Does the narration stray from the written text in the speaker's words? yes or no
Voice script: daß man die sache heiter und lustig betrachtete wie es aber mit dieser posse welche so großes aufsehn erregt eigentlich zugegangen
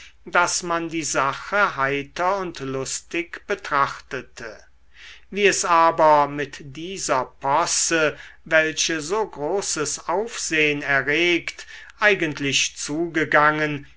no